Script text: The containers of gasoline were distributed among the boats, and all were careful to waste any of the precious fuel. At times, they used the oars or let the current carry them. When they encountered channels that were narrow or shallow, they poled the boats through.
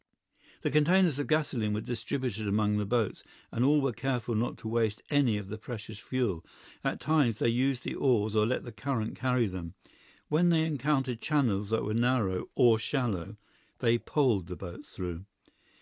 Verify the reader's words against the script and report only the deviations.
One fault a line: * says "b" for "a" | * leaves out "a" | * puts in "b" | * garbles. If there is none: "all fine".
* puts in "not"